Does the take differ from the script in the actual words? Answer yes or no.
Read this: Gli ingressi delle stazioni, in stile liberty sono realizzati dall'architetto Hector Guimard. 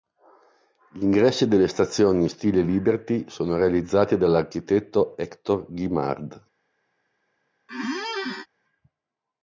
no